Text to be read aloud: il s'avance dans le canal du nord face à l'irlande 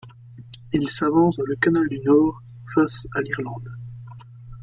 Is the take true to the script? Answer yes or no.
yes